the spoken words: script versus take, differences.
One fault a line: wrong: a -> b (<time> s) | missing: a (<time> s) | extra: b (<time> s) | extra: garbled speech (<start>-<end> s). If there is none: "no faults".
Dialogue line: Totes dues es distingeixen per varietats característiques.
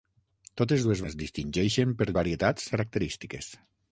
no faults